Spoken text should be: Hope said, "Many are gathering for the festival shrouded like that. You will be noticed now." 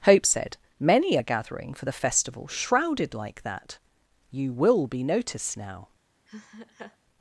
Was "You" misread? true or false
false